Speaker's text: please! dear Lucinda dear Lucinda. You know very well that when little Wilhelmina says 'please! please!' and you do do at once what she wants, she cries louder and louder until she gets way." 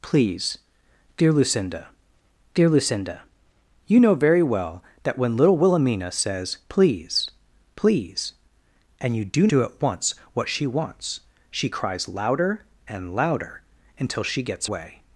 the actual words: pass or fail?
pass